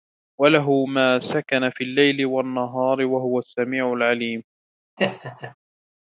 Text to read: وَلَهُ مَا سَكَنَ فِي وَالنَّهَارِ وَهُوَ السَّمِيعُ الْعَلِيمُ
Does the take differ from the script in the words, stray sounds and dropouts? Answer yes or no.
yes